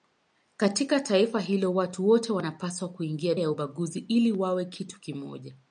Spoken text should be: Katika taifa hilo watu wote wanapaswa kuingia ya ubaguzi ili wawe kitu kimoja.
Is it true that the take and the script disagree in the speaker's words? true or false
false